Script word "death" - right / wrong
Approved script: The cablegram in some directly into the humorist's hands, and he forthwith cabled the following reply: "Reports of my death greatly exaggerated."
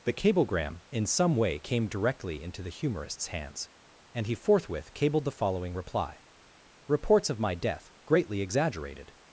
right